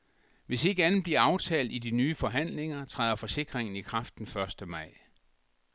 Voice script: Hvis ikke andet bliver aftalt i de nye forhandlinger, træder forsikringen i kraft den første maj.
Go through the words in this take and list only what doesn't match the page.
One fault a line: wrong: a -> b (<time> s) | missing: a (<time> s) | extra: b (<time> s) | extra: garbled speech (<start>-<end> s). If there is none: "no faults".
no faults